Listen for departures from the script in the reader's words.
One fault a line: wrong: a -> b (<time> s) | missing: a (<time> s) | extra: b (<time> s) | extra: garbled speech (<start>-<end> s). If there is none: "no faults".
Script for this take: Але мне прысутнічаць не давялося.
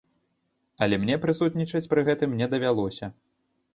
extra: пры гэтым (1.9 s)